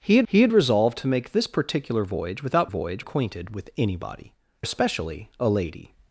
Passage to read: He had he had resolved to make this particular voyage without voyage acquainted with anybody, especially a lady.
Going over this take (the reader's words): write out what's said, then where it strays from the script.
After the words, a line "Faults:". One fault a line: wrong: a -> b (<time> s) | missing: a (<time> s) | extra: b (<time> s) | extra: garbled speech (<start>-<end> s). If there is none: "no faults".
He had he had resolved to make this particular voyage without voyage acquainted with anybody, especially a lady.
Faults:
no faults